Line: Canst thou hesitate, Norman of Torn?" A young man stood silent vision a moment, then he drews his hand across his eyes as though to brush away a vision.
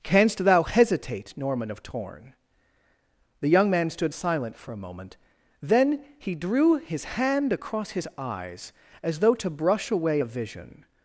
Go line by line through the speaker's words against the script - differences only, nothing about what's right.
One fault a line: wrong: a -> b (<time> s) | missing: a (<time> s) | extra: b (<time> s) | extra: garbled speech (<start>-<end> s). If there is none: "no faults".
wrong: A -> The (3.4 s)
wrong: vision -> for (4.6 s)
wrong: drews -> drew (6.3 s)